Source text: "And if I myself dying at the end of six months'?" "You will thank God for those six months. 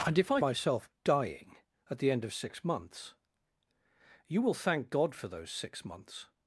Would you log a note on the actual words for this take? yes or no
no